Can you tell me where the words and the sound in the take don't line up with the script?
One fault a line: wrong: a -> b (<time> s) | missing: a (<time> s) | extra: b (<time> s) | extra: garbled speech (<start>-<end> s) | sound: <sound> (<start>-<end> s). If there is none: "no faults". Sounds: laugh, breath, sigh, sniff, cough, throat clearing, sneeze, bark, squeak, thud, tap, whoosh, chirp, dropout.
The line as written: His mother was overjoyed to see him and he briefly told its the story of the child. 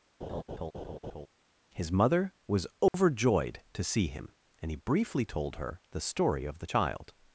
sound: laugh (0.2-1.3 s)
sound: dropout (2.9-2.9 s)
wrong: its -> her (5.6 s)